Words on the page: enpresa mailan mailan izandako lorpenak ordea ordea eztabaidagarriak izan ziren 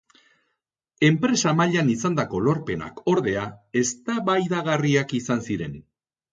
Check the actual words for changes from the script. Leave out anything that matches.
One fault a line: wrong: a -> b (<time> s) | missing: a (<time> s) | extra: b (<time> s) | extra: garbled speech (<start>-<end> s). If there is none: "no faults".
missing: mailan (1.9 s)
missing: ordea (3.5 s)